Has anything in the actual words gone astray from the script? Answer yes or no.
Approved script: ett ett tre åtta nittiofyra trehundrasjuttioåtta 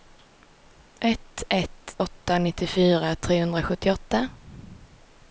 yes